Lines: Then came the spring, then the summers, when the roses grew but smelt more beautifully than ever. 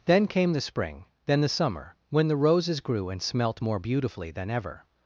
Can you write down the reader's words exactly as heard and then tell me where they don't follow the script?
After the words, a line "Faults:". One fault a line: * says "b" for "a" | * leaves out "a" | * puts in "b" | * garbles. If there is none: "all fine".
Then came the spring, then the summer, when the roses grew and smelt more beautifully than ever.
Faults:
* says "summer" for "summers"
* says "and" for "but"